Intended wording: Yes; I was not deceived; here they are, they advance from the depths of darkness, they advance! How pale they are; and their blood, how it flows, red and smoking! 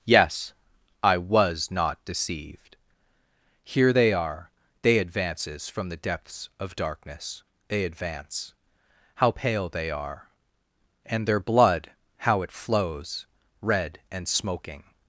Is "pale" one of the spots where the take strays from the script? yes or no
no